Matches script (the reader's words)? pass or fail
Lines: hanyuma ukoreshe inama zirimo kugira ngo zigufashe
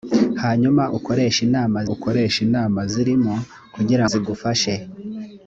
fail